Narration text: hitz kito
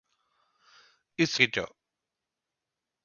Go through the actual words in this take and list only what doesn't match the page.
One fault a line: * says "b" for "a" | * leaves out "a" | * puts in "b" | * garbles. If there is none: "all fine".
all fine